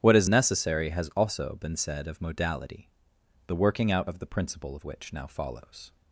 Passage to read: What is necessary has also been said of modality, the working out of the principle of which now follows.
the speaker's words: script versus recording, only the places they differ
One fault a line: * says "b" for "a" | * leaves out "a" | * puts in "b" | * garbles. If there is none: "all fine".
all fine